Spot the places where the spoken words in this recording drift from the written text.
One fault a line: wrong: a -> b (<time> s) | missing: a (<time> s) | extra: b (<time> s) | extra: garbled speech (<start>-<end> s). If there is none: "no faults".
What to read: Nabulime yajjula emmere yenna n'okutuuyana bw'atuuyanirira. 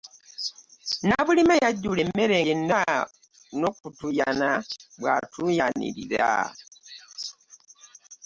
no faults